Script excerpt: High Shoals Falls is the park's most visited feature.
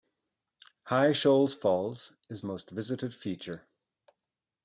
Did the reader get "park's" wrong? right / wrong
wrong